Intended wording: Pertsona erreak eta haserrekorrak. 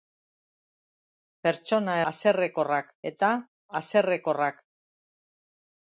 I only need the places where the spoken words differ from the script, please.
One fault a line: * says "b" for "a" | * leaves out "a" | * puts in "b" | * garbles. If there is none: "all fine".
* says "haserrekorrak" for "erreak"